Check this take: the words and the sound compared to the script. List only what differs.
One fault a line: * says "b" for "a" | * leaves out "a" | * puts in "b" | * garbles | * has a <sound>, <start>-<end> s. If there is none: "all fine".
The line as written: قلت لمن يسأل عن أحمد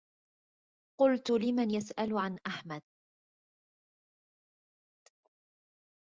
all fine